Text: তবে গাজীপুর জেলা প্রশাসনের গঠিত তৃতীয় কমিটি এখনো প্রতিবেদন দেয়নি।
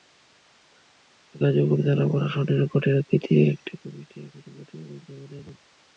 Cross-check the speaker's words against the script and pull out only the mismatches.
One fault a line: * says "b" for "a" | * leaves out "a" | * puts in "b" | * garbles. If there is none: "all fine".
* puts in "একটি"
* puts in "জমা"